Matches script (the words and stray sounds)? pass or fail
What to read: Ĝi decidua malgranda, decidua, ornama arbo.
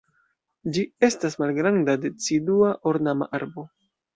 fail